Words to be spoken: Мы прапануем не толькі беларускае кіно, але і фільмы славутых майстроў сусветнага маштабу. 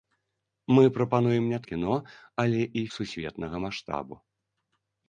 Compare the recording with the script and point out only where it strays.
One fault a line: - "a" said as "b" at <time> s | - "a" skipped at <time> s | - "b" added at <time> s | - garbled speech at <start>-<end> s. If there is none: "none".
- "толькі беларускае" skipped at 1.6 s
- "фільмы славутых майстроў" skipped at 2.8 s